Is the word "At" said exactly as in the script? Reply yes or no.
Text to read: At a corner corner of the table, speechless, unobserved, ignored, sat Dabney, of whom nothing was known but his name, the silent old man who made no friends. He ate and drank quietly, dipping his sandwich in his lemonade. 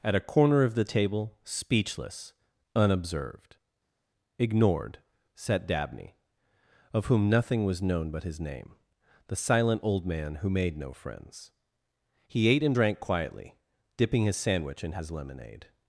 yes